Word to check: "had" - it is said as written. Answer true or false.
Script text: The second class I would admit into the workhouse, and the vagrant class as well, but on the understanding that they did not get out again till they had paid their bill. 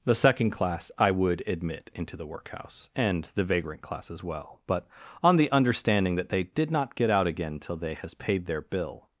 false